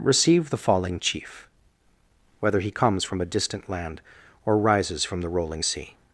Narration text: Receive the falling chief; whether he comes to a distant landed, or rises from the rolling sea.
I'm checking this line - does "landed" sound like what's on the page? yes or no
no